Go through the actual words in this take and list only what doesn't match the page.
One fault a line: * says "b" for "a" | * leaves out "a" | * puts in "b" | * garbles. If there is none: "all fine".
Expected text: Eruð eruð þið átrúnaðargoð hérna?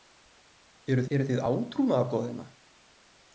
all fine